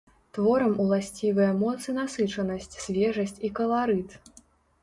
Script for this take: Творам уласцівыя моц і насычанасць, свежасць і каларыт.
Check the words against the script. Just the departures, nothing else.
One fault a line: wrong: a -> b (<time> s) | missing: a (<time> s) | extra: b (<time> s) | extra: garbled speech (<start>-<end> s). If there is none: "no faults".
no faults